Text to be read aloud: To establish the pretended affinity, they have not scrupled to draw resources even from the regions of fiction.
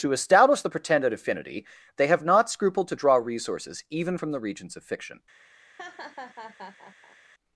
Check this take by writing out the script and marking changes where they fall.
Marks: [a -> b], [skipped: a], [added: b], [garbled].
To establish the pretended affinity, they have not scrupled to draw resources even from the regions of fiction.